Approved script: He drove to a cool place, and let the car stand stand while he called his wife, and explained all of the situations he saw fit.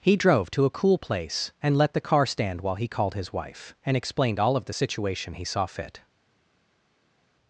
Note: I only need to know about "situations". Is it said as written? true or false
false